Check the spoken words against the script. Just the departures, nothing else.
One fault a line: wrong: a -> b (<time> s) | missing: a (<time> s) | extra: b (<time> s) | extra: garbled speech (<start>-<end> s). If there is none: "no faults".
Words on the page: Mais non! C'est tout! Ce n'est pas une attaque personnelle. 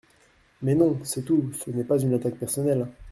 no faults